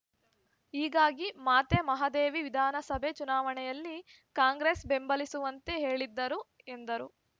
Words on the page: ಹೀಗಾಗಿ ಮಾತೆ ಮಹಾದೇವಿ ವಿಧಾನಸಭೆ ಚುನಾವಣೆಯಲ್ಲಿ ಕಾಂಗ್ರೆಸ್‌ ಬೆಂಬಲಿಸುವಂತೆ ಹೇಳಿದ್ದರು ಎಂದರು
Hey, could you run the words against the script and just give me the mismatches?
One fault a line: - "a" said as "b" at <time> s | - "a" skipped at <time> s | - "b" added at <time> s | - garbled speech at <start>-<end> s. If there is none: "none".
none